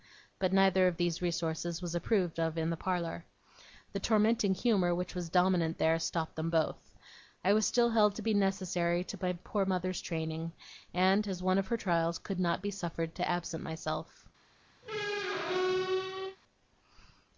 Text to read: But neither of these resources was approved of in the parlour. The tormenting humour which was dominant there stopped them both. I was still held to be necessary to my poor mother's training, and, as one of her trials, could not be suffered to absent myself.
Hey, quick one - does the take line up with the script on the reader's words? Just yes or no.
yes